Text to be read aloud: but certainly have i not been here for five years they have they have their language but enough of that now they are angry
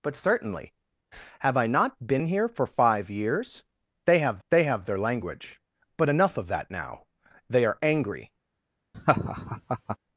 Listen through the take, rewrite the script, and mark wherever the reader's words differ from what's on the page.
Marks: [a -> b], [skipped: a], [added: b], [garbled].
but certainly have i not been here for five years they have they have their language but enough of that now they are angry